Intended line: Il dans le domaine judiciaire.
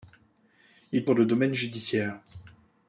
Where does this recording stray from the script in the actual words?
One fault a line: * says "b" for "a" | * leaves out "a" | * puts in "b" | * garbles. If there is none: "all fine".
all fine